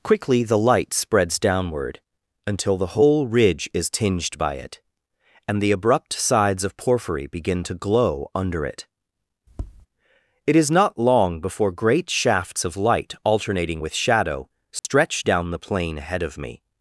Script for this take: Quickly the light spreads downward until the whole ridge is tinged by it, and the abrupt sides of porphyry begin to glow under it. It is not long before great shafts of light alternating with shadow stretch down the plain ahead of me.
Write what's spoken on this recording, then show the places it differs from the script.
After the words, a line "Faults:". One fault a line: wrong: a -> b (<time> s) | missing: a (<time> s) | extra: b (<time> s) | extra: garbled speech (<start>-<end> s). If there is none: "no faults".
Quickly the light spreads downward until the whole ridge is tinged by it, and the abrupt sides of porphyry begin to glow under it. It is not long before great shafts of light alternating with shadow stretch down the plain ahead of me.
Faults:
no faults